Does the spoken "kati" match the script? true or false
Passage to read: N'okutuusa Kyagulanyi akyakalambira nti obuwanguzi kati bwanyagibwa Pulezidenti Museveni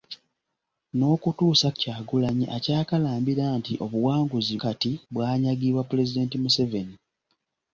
true